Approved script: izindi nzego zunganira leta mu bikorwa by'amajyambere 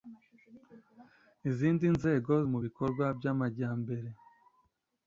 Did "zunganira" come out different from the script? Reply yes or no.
yes